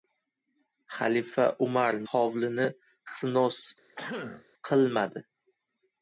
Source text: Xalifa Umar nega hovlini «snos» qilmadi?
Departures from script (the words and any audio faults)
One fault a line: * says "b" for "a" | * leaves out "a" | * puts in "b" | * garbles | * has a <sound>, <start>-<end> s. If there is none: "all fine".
* leaves out "nega"
* has a throat clearing, 3.9-4.4 s